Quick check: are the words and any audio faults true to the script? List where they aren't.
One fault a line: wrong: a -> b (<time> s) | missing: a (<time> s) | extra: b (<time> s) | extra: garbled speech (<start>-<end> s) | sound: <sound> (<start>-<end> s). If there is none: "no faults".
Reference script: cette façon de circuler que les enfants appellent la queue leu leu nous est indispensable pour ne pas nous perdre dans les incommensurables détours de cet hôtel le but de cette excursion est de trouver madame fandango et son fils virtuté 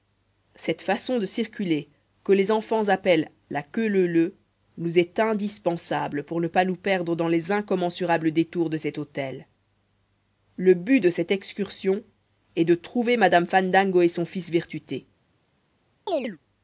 sound: chirp (16.1-16.4 s)